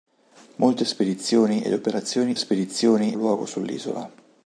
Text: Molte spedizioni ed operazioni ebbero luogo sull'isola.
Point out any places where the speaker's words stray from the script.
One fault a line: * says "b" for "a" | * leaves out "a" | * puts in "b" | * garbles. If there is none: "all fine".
* says "spedizioni" for "ebbero"